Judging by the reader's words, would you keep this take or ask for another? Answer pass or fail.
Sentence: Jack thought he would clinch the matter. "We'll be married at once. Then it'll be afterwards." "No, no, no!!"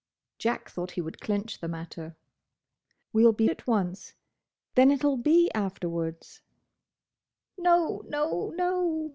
fail